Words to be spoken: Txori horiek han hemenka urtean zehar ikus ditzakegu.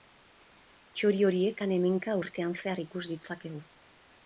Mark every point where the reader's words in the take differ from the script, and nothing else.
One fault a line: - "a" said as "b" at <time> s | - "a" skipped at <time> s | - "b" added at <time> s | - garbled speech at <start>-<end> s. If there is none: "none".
none